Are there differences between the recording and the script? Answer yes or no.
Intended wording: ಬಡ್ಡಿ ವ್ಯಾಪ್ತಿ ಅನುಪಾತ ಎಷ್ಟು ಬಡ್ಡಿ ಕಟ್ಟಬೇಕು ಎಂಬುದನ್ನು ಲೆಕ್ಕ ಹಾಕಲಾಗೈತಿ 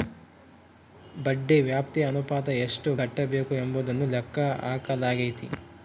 yes